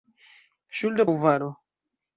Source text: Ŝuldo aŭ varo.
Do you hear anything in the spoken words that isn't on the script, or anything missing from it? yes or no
no